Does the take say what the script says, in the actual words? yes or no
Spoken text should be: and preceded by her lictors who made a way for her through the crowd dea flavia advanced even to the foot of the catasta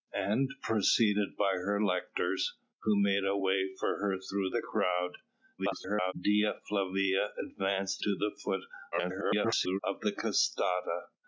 no